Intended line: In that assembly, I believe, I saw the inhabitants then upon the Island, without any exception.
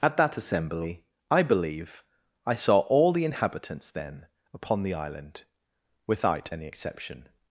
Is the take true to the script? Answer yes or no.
no